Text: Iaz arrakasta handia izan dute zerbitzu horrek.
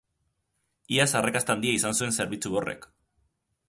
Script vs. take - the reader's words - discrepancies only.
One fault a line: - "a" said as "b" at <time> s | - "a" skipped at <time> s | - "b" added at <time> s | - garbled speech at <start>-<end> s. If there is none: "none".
- "dute" said as "zuen" at 2.0 s